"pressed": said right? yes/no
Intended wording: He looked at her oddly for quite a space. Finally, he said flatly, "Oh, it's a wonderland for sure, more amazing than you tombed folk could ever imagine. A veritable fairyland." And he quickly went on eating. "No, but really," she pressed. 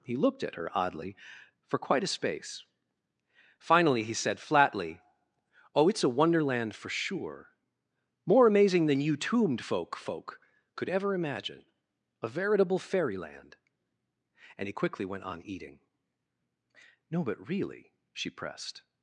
yes